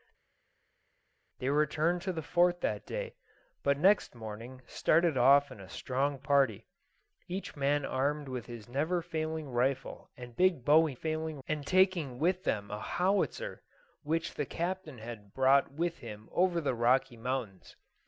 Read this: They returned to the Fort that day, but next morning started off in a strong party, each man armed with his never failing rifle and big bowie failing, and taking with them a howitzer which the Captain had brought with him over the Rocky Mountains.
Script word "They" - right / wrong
right